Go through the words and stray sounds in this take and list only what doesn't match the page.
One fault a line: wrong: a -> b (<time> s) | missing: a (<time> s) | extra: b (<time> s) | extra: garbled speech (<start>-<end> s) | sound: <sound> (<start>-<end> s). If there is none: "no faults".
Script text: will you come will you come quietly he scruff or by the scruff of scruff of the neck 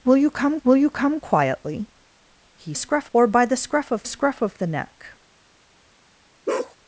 sound: bark (6.5-6.8 s)